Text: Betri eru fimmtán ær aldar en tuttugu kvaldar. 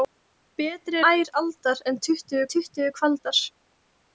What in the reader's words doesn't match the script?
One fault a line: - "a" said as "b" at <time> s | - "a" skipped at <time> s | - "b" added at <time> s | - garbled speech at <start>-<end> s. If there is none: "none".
- "eru fimmtán" skipped at 1.0 s
- "tuttugu" added at 2.6 s